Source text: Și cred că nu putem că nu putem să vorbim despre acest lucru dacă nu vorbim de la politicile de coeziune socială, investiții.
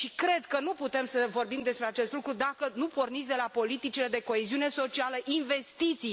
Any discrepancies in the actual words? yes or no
yes